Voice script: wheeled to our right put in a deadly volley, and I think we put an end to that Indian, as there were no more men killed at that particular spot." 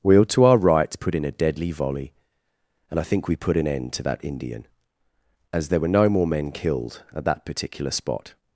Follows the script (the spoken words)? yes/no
yes